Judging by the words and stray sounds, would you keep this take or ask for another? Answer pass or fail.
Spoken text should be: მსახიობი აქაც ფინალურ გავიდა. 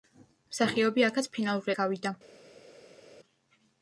pass